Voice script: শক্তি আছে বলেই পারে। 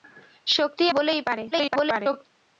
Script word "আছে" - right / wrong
wrong